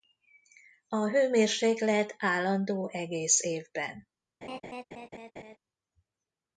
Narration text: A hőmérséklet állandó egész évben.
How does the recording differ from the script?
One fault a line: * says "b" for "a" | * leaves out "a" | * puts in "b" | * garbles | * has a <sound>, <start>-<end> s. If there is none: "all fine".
* has a laugh, 4.4-5.6 s